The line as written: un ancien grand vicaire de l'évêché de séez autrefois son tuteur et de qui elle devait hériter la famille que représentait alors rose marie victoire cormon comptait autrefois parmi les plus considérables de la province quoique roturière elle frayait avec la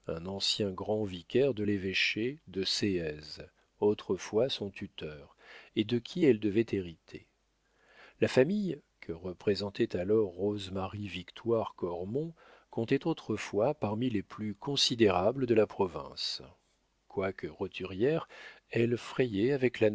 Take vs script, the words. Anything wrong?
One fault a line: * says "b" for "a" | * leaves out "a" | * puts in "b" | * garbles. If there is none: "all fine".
all fine